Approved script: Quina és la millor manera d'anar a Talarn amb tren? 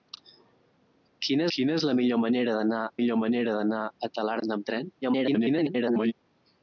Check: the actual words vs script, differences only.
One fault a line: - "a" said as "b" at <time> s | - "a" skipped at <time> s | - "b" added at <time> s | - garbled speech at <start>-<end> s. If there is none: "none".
- "quina" added at 1.6 s
- "millor manera d'anar" added at 3.0 s
- garbled speech at 5.0-6.1 s